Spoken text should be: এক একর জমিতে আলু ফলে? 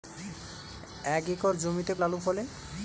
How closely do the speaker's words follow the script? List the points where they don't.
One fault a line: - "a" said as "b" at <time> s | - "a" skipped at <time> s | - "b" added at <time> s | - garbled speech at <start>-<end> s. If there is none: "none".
none